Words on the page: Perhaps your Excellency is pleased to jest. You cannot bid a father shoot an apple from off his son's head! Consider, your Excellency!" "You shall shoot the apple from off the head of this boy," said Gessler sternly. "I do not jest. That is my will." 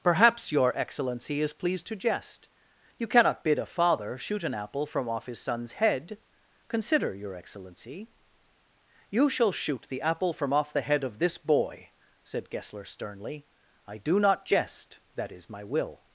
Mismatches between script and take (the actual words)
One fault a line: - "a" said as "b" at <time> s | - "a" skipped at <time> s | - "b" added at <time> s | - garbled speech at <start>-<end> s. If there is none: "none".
none